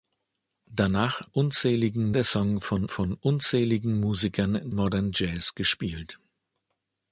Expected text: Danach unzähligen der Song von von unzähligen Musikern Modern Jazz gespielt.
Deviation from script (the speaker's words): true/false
false